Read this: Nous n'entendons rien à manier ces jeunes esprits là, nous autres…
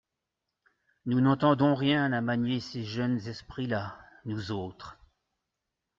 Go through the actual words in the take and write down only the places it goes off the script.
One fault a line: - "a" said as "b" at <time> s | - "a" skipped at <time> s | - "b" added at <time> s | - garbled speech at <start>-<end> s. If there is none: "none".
none